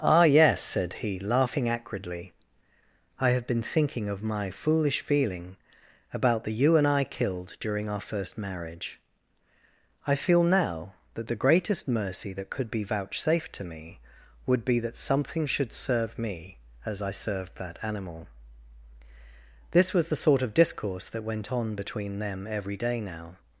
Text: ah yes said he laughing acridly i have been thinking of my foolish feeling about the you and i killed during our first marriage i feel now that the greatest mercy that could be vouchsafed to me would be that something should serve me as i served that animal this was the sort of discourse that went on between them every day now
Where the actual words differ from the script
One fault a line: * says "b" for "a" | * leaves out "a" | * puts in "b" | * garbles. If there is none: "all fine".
all fine